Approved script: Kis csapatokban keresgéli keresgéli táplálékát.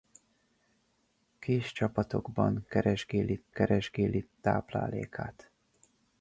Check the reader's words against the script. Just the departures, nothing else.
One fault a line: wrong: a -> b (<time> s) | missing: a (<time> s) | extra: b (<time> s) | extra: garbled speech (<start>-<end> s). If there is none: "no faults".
no faults